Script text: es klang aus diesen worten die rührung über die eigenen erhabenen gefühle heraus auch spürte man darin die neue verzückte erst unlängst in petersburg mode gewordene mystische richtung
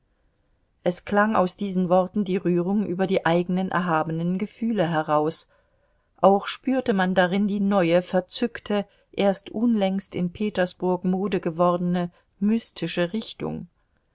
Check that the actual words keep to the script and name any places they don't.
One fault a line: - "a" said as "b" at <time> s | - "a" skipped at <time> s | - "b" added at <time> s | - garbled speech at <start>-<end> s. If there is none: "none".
none